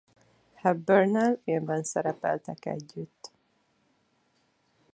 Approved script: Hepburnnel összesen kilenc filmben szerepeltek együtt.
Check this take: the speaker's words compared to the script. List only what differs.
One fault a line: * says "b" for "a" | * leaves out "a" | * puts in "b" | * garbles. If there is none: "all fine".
* leaves out "összesen kilenc"